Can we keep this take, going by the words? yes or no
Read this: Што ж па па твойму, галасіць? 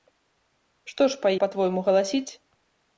yes